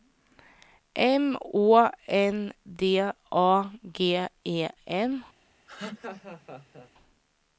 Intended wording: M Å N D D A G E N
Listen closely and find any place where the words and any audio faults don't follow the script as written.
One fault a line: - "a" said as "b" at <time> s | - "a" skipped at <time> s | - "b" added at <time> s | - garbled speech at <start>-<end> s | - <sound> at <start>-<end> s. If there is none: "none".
- "D" skipped at 3.0 s
- laugh at 5.7-6.9 s